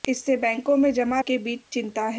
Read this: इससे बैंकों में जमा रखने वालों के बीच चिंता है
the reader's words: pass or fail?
fail